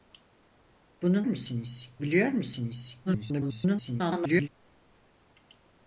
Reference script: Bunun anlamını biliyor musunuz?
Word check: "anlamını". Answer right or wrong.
wrong